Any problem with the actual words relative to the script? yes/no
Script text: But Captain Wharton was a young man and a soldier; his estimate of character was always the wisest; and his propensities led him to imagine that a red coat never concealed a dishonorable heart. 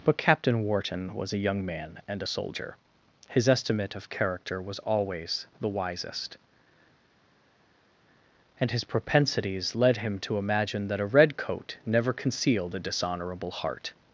no